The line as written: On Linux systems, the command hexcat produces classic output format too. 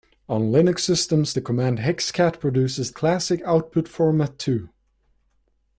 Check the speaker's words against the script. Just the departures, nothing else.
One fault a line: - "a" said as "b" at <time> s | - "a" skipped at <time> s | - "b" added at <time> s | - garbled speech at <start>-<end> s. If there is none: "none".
none